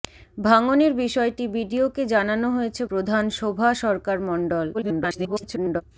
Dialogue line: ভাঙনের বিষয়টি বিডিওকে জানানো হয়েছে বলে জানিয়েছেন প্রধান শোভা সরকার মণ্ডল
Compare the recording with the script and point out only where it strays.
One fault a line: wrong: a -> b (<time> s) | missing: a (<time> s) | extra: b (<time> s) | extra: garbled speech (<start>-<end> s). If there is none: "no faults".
missing: বলে জানিয়েছেন (2.8 s)
extra: garbled speech (4.7-5.8 s)